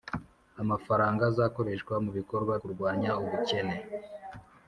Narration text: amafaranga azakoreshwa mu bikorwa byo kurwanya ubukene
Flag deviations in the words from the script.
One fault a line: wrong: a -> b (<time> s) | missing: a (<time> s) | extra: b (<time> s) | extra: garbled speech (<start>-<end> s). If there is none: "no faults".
missing: byo (2.5 s)